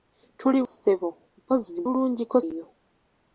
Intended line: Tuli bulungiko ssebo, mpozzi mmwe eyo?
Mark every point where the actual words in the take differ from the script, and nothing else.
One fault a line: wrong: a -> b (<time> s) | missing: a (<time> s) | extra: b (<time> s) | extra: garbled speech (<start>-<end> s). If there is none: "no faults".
missing: bulungiko (0.6 s)
wrong: mmwe -> bulungiko (1.8 s)